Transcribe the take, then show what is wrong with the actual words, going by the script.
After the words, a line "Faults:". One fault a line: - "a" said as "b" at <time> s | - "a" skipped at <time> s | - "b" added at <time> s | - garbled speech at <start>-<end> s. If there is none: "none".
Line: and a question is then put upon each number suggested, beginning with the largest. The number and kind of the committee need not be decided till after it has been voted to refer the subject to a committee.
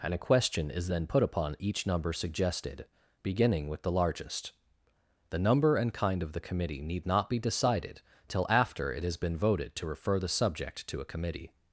and a question is then put upon each number suggested, beginning with the largest. The number and kind of the committee need not be decided till after it has been voted to refer the subject to a committee.
Faults:
none